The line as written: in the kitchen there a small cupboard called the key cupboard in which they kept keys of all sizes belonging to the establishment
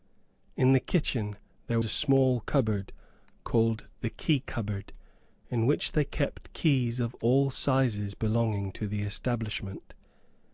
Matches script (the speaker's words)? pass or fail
pass